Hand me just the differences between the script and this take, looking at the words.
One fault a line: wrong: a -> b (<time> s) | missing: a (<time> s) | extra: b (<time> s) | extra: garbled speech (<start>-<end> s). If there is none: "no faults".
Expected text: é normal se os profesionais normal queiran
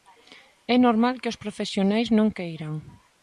wrong: se -> que (1.2 s)
wrong: normal -> non (2.2 s)